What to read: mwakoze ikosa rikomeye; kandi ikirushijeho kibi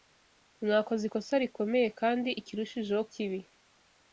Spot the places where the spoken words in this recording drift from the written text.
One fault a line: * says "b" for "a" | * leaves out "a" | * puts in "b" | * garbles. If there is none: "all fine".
all fine